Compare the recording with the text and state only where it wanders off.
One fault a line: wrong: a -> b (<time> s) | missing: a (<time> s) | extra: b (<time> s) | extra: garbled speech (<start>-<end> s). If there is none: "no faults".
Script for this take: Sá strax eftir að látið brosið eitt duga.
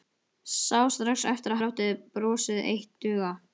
no faults